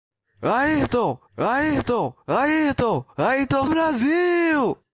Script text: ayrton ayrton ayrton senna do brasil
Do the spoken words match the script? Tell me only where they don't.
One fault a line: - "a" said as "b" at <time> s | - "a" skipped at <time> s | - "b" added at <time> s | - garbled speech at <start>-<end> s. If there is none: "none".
- "senna do" said as "ayrton" at 3.2 s